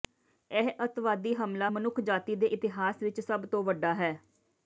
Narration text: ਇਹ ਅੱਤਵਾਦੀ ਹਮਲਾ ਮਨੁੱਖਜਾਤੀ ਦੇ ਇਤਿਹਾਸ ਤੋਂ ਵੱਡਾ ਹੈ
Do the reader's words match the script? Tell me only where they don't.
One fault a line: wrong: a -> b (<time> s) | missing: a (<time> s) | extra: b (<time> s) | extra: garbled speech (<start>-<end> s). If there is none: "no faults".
extra: ਵਿਚ ਸਭ (3.0 s)